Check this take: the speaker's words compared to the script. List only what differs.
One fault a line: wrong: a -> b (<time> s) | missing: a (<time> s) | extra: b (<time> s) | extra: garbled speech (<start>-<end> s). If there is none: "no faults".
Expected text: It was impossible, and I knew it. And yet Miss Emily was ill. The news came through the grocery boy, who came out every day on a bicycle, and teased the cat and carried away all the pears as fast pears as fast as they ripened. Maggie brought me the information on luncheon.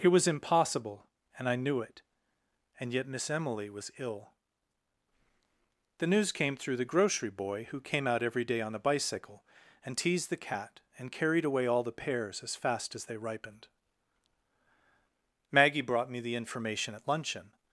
missing: pears (12.9 s)
missing: fast as (13.1 s)
wrong: on -> at (16.9 s)